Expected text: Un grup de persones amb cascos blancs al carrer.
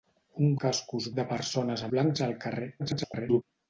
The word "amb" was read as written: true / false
false